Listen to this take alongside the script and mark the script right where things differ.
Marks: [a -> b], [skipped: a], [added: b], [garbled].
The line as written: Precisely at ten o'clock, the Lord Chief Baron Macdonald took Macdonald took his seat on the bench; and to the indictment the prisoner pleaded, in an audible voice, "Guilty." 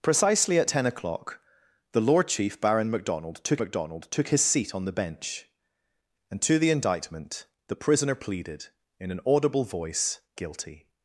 Precisely at ten o'clock, the Lord Chief Baron Macdonald took Macdonald took his seat on the bench; and to the indictment the prisoner pleaded, in an audible voice, "Guilty."